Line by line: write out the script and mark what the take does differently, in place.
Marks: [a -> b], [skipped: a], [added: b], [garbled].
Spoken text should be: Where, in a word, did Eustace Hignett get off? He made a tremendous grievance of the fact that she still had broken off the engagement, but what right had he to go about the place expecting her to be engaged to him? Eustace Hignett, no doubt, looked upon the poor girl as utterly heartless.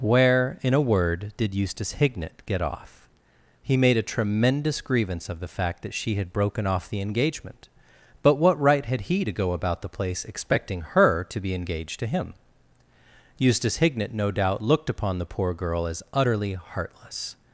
Where, in a word, did Eustace Hignett get off? He made a tremendous grievance of the fact that she [skipped: still] had broken off the engagement, but what right had he to go about the place expecting her to be engaged to him? Eustace Hignett, no doubt, looked upon the poor girl as utterly heartless.